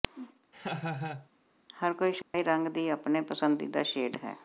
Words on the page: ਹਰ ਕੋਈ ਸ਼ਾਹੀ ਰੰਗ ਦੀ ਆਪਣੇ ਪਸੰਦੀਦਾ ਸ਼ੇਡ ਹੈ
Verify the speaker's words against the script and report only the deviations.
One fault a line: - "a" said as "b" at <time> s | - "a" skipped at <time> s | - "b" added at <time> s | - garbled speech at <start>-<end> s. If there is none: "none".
none